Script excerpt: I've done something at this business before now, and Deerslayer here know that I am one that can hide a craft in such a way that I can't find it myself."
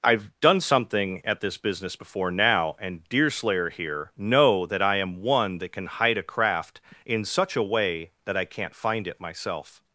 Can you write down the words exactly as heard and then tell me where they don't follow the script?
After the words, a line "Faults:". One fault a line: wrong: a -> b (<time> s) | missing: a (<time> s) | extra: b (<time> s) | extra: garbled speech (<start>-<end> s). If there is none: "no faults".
I've done something at this business before now, and Deerslayer here know that I am one that can hide a craft in such a way that I can't find it myself."
Faults:
no faults